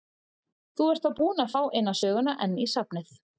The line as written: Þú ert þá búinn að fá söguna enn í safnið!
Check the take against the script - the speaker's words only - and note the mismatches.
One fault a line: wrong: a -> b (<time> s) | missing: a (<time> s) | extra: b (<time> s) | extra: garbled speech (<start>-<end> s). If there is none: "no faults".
extra: eina (1.8 s)